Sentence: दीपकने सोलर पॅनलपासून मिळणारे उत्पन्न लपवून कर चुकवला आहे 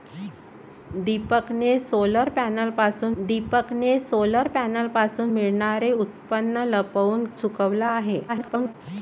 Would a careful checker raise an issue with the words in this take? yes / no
yes